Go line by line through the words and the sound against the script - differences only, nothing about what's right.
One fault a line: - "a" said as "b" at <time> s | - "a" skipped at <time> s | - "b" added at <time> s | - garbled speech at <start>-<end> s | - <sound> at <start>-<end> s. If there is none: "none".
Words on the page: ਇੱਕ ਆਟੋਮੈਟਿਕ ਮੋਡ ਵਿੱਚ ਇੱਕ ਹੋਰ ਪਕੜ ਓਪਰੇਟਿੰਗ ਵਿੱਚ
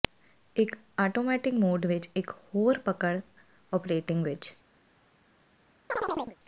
- chirp at 5.9-6.4 s